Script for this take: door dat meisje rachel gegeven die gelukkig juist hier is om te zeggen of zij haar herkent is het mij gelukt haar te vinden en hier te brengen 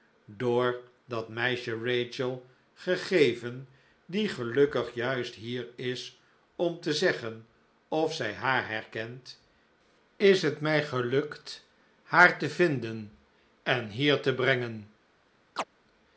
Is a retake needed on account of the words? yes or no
no